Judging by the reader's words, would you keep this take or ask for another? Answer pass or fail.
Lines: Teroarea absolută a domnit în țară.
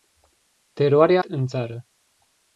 fail